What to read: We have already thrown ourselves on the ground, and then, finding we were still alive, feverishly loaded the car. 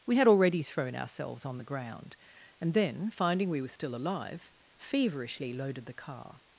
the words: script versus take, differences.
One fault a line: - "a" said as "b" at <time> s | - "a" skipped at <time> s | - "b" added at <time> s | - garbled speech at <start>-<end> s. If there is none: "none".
- "have" said as "had" at 0.2 s